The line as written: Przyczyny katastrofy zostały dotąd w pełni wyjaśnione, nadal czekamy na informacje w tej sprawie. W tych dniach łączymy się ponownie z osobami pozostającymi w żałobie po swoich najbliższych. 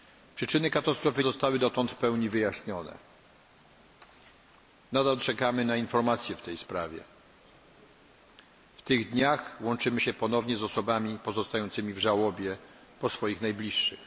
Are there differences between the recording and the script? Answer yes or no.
no